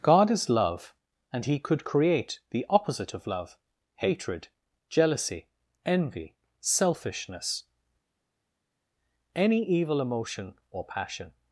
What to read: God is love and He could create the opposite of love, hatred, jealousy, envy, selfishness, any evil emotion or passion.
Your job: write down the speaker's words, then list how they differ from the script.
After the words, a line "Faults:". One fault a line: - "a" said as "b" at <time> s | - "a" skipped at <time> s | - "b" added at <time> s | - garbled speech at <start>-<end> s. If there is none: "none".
God is love and He could create the opposite of love, hatred, jealousy, envy, selfishness, any evil emotion or passion.
Faults:
none